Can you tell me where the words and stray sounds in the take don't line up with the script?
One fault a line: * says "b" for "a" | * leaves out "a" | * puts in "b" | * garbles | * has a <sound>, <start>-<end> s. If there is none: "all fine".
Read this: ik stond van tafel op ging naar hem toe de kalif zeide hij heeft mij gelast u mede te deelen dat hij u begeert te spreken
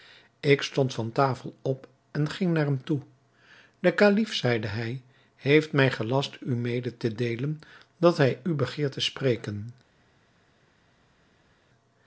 * puts in "en"